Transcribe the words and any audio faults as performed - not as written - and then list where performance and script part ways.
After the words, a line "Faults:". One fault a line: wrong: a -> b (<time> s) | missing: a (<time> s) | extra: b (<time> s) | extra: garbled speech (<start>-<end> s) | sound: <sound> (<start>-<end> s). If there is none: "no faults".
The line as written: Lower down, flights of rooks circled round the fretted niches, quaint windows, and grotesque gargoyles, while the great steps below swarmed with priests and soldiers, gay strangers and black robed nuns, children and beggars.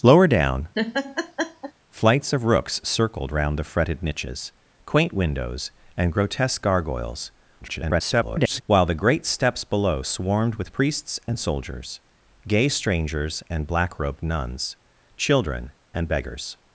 Lower down, flights of rooks circled round the fretted niches, quaint windows, and grotesque gargoyles, [garbled] while the great steps below swarmed with priests and soldiers, gay strangers and black robed nuns, children and beggars.
Faults:
sound: laugh (0.7-1.7 s)
extra: garbled speech (7.6-8.6 s)